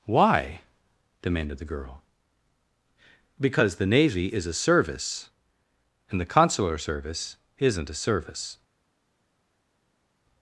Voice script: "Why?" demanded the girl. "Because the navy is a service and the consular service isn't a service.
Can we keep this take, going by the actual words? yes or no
yes